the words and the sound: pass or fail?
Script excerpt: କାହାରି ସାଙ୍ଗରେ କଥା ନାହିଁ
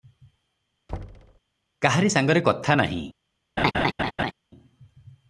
fail